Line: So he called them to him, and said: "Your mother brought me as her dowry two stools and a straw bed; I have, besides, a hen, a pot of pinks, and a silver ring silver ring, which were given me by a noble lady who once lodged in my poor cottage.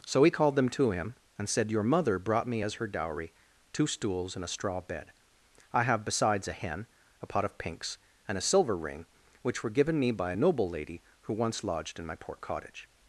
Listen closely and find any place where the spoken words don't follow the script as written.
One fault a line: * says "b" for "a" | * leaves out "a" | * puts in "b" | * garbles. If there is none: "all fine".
* leaves out "silver ring"